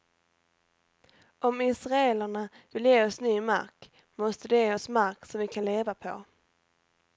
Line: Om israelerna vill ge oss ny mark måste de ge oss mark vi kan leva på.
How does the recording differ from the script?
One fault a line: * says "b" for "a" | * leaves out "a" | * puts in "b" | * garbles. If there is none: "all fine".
* puts in "som"